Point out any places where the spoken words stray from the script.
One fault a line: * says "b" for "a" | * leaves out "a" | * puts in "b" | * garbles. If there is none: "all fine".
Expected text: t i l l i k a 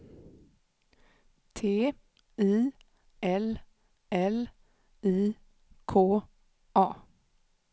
all fine